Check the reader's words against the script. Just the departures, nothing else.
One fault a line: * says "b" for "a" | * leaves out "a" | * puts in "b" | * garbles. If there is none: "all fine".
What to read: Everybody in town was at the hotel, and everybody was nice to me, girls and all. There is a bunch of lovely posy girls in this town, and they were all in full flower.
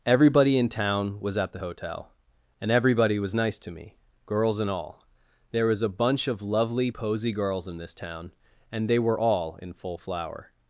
* says "was" for "is"